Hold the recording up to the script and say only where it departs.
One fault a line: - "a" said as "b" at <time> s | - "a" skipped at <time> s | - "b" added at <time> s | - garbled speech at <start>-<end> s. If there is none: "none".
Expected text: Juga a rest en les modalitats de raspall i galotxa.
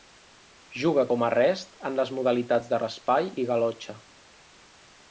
- "com" added at 1.1 s